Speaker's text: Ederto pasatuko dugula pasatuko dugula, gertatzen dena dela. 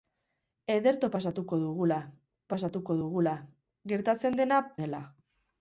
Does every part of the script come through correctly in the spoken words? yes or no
yes